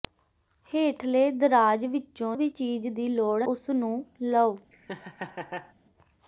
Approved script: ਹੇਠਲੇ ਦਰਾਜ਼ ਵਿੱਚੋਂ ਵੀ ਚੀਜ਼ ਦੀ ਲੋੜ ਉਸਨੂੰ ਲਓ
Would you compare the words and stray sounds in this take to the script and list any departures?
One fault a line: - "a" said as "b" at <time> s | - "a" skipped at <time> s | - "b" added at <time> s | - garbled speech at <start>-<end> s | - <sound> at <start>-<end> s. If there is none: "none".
- laugh at 4.7-5.7 s